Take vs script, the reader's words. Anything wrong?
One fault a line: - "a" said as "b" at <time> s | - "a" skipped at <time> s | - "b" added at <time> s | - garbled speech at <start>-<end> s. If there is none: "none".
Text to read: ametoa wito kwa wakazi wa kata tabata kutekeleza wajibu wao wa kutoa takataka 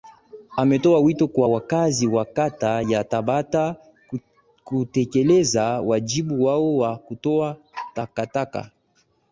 - "ya" added at 2.8 s